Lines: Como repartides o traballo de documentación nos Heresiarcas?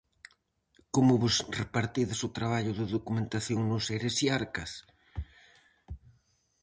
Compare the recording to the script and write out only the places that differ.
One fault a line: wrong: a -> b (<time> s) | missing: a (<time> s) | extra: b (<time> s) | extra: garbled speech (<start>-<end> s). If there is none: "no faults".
extra: vos (1.2 s)